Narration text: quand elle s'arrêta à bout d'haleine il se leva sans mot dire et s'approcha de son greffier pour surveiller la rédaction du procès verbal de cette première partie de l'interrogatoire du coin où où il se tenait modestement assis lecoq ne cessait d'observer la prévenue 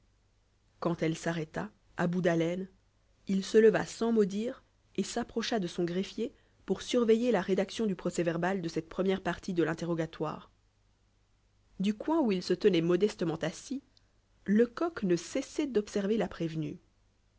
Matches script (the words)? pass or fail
fail